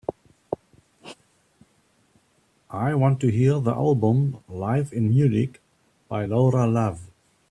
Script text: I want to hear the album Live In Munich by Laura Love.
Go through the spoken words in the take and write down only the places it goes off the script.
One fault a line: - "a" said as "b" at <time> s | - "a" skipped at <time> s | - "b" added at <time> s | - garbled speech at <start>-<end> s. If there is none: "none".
none